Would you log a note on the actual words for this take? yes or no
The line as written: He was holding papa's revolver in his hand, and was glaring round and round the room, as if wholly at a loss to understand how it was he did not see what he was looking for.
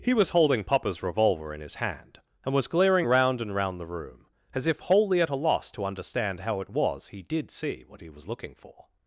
yes